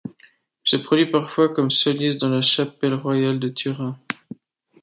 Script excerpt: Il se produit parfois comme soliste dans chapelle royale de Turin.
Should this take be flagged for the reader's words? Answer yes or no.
yes